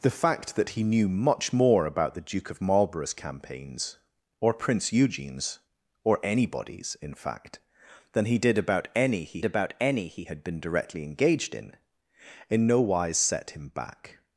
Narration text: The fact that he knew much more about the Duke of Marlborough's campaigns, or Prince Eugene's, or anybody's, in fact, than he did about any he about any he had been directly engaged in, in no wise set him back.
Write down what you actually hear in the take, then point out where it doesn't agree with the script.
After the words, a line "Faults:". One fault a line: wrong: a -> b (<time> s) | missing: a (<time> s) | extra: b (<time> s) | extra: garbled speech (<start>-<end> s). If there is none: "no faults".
The fact that he knew much more about the Duke of Marlborough's campaigns, or Prince Eugene's, or anybody's, in fact, than he did about any he about any he had been directly engaged in, in no wise set him back.
Faults:
no faults